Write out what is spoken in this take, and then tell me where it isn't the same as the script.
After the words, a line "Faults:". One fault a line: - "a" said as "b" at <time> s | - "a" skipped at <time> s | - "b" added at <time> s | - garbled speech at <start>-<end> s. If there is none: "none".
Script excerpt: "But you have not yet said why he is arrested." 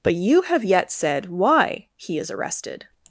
"But you have yet said why he is arrested."
Faults:
- "not" skipped at 0.6 s